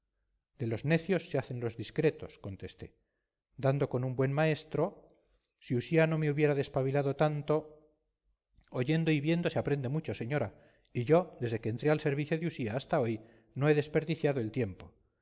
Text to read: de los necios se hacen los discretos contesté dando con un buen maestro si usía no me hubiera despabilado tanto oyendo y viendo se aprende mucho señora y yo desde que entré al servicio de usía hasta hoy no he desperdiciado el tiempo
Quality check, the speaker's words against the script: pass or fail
pass